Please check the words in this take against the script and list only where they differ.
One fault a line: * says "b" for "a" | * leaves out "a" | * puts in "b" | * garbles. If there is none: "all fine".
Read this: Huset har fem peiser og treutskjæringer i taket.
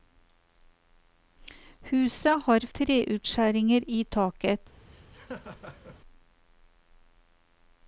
* leaves out "fem peiser og"